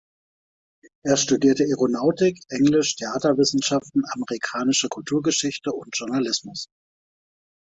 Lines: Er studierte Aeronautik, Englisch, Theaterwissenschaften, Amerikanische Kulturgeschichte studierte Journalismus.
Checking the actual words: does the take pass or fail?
fail